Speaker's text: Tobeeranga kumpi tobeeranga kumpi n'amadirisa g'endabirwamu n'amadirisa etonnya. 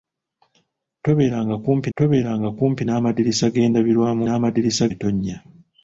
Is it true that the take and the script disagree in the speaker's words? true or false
false